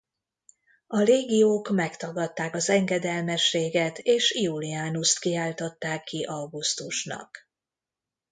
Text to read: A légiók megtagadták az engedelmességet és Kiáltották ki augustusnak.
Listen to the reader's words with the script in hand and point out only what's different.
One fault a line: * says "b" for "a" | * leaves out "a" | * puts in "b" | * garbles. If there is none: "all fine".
* puts in "Iulianust"